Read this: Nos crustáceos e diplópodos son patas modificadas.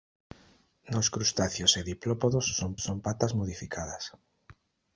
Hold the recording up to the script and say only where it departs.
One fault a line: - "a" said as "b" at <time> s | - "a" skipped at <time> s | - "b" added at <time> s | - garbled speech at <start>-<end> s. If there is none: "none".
- "son" added at 2.9 s